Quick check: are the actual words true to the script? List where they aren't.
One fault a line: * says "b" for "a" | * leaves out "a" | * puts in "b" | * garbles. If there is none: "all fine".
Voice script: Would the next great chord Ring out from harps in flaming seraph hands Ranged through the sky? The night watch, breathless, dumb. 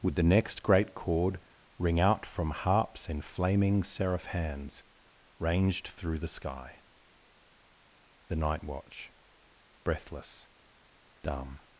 all fine